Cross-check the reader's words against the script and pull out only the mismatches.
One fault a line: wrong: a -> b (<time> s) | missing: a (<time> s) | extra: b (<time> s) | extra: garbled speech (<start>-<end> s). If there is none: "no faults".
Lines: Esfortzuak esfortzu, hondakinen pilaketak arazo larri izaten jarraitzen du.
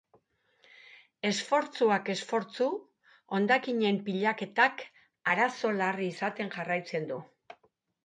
no faults